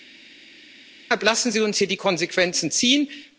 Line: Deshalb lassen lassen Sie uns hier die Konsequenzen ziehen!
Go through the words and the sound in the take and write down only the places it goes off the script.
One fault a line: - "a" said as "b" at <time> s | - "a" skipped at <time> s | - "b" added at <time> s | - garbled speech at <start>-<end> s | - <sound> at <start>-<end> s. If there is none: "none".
- "lassen" skipped at 1.5 s